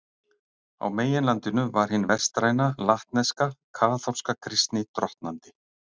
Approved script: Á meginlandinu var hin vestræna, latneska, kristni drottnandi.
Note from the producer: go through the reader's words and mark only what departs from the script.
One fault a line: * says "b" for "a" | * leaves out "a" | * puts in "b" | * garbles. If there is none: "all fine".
* puts in "kaþólska"